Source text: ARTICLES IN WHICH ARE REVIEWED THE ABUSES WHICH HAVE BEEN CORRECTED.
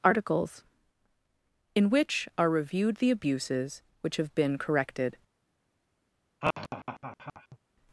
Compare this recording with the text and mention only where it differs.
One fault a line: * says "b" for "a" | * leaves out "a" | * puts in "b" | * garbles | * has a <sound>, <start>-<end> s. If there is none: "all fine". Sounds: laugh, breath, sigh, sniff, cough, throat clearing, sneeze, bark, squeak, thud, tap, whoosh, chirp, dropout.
* has a laugh, 6.4-7.6 s